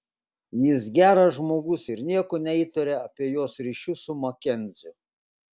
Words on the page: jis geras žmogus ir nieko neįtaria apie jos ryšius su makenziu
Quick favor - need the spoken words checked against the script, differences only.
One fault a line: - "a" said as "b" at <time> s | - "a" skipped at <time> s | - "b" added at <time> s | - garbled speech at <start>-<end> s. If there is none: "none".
none